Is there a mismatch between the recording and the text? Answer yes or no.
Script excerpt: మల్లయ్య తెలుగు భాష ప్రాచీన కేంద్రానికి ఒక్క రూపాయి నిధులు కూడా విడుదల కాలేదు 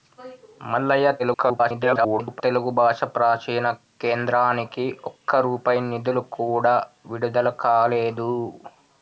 yes